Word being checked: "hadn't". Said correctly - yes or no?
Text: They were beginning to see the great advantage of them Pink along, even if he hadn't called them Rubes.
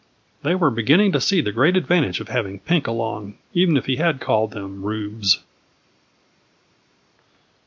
no